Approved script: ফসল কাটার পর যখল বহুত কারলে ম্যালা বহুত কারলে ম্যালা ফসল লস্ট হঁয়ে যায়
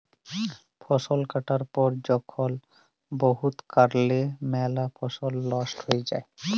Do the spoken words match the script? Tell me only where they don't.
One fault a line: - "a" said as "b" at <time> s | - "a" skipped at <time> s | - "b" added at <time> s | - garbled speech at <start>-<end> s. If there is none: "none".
- "বহুত কারলে ম্যালা" skipped at 4.8 s